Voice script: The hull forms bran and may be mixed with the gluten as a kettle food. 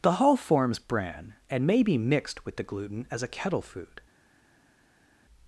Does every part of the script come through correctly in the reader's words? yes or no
yes